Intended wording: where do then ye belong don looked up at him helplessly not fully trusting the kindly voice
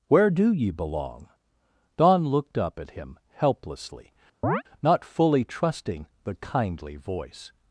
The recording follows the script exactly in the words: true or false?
false